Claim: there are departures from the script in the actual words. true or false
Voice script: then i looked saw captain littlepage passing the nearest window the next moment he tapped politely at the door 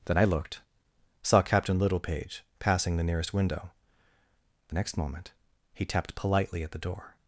false